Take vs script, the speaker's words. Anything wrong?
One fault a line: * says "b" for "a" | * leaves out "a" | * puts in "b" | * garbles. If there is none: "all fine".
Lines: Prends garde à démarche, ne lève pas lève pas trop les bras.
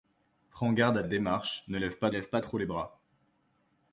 all fine